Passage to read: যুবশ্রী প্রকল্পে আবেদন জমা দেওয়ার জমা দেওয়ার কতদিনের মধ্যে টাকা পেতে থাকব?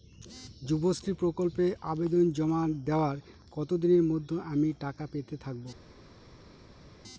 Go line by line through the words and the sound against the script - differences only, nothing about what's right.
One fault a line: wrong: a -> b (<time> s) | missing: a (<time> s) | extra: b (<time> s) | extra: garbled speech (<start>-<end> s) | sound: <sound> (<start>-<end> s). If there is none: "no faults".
missing: জমা দেওয়ার (3.2 s)
extra: আমি (4.5 s)